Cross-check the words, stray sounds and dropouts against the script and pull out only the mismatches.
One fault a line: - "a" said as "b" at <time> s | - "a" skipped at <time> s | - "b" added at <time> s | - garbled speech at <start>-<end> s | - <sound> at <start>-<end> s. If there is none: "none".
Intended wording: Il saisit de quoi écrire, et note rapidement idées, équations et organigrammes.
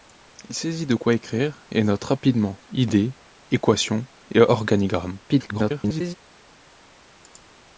- garbled speech at 5.3-6.1 s